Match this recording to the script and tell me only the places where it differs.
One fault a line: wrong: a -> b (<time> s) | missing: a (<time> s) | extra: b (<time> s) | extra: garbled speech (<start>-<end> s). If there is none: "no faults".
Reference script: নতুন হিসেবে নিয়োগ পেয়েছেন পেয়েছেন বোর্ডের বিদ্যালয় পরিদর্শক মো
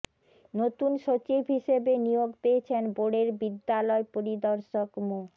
extra: সচিব (1.1 s)
missing: পেয়েছেন (2.8 s)